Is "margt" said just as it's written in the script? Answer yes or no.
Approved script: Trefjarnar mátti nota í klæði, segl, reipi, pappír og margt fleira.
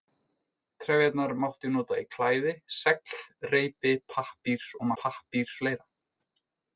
no